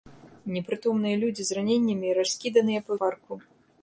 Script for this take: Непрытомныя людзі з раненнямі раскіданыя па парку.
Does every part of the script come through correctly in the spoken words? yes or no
yes